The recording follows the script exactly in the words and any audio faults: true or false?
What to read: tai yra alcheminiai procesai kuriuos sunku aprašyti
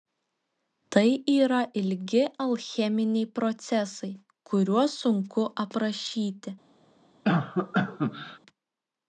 false